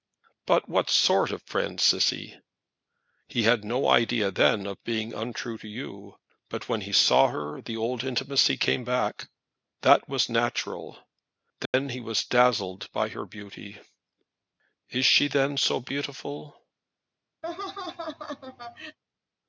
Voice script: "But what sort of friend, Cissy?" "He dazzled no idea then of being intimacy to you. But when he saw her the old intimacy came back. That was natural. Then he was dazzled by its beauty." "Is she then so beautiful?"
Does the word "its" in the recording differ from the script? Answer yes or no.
yes